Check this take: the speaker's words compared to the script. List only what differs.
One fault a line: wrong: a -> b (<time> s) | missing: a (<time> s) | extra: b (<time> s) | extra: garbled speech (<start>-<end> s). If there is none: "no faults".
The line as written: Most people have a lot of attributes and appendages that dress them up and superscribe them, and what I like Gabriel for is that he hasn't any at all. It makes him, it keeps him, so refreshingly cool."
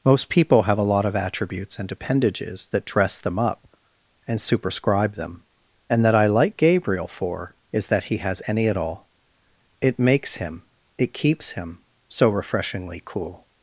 wrong: what -> that (6.0 s)
wrong: hasn't -> has (8.2 s)